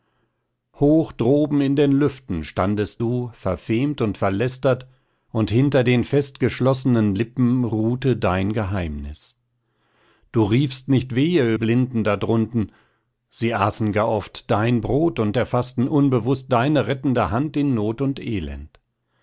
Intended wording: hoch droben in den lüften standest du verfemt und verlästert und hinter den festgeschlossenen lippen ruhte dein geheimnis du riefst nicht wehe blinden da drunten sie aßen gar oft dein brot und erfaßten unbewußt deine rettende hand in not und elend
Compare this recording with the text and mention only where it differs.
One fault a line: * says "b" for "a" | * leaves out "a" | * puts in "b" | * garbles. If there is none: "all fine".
all fine